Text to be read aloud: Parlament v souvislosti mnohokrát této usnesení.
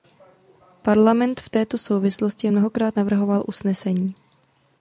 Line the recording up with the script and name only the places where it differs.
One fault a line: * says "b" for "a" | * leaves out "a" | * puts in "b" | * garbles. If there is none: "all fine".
* puts in "této"
* says "navrhoval" for "této"